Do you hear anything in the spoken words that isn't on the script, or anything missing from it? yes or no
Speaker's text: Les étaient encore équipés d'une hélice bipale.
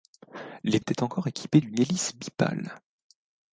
no